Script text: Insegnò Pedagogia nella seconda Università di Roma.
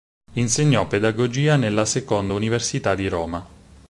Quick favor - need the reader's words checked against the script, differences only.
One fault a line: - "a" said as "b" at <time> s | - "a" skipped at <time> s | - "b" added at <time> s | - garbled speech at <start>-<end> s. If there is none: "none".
none